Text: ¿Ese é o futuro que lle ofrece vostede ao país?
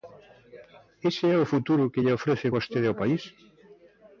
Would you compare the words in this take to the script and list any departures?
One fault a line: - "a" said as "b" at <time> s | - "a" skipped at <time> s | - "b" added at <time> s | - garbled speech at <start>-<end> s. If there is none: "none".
none